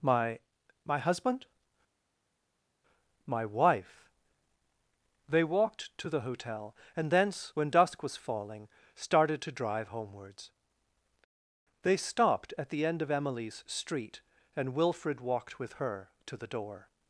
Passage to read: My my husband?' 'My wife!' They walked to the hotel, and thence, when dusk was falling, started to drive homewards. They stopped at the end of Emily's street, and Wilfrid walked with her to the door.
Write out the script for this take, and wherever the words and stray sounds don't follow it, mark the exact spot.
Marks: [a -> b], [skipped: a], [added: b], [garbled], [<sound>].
My my husband?' 'My wife!' They walked to the hotel, and thence, when dusk was falling, started to drive homewards. They stopped at the end of Emily's street, and Wilfrid walked with her to the door.